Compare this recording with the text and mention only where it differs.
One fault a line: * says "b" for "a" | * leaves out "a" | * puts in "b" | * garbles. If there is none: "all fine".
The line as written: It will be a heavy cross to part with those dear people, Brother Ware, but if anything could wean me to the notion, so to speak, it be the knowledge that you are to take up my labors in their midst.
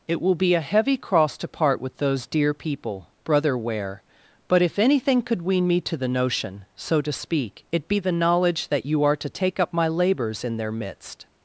all fine